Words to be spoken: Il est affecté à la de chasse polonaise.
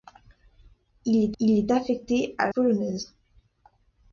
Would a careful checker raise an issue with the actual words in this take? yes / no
yes